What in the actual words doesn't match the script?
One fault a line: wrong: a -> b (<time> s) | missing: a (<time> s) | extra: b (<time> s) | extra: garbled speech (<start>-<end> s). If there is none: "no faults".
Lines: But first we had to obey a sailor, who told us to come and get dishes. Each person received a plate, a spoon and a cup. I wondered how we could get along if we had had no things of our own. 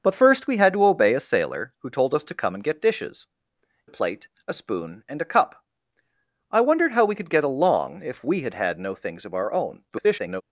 missing: Each person received (3.3 s)
extra: garbled speech (9.9-10.4 s)